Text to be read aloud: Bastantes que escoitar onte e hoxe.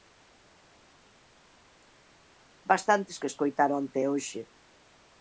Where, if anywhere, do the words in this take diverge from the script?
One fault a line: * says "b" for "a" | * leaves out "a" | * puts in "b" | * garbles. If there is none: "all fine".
all fine